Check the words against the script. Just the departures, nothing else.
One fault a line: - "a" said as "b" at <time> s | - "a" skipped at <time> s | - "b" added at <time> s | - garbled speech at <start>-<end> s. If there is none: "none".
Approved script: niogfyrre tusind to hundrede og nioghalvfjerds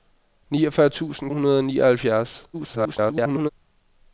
- "to" skipped at 1.3 s
- garbled speech at 2.5-3.5 s